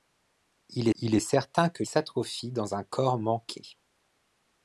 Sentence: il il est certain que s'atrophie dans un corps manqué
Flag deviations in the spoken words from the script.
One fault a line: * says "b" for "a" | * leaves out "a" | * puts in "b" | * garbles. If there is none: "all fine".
all fine